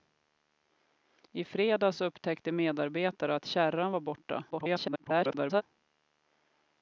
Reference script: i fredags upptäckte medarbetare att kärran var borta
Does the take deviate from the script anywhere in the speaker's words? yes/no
yes